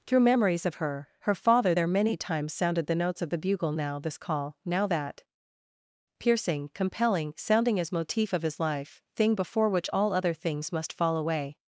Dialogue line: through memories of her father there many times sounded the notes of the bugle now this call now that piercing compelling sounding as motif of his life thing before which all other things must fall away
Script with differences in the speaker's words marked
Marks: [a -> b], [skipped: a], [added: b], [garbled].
through memories of her [added: her] father there many times sounded the notes of the bugle now this call now that piercing compelling sounding as motif of his life thing before which all other things must fall away